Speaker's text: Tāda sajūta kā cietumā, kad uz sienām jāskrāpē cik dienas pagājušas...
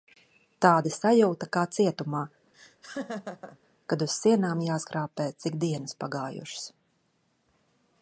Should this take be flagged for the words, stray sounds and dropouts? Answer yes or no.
yes